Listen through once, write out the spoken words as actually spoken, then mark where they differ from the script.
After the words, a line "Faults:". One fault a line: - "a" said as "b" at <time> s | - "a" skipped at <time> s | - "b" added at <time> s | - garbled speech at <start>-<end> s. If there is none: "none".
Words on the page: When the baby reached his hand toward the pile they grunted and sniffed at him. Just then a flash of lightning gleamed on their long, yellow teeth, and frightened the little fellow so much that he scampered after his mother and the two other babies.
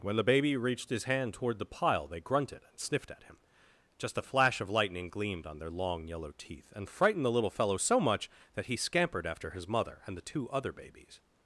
When the baby reached his hand toward the pile they grunted and sniffed at him. Just a flash of lightning gleamed on their long, yellow teeth, and frightened the little fellow so much that he scampered after his mother and the two other babies.
Faults:
- "then" skipped at 4.2 s